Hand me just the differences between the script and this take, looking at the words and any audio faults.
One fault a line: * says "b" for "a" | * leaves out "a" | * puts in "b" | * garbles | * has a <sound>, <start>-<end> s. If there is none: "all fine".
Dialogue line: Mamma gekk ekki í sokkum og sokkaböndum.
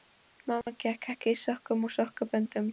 * has a dropout, 0.6-0.7 s